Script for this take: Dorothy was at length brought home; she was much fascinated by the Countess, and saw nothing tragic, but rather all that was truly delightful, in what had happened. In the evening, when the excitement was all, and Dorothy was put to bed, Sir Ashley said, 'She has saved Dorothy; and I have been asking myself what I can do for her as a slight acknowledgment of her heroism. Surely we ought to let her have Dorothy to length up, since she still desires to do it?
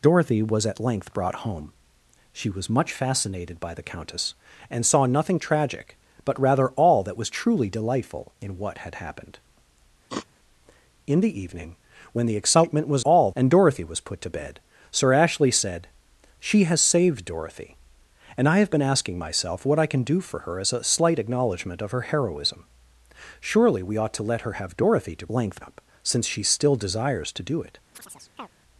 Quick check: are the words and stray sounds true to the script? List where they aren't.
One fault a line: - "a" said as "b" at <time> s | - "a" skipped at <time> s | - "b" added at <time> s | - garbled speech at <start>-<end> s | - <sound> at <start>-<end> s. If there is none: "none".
- sniff at 10.1-10.3 s
- chirp at 27.9-28.5 s